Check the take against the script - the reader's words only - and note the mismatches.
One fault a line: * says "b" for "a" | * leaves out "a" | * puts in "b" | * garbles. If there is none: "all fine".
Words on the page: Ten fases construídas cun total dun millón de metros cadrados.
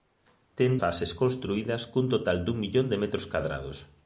all fine